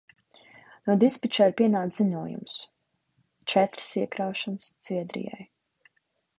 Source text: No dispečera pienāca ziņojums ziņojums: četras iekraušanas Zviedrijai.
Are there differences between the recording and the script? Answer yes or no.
yes